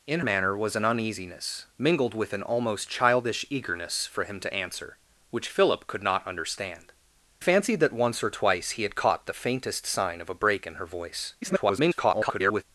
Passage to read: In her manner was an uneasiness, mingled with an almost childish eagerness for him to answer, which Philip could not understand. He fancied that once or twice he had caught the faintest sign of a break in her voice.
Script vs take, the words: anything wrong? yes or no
yes